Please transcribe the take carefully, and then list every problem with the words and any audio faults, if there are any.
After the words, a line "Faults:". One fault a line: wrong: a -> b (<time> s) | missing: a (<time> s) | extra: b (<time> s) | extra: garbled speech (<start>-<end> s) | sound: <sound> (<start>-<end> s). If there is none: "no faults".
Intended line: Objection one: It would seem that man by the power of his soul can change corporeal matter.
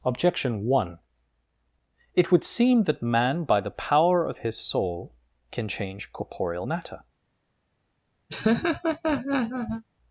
Objection one: It would seem that man by the power of his soul can change corporeal matter.
Faults:
sound: laugh (8.3-9.8 s)